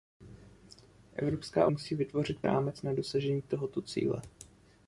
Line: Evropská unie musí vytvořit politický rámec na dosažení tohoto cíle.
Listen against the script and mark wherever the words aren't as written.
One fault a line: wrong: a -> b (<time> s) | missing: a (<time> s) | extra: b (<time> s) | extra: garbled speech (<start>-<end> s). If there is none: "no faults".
missing: unie (1.7 s)
missing: politický (2.4 s)